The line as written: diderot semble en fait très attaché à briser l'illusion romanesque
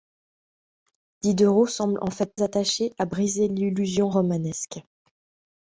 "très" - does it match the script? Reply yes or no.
no